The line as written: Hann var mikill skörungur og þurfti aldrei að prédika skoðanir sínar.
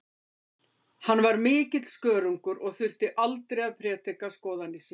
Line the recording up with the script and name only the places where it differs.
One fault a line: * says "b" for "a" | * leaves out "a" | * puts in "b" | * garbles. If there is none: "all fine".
all fine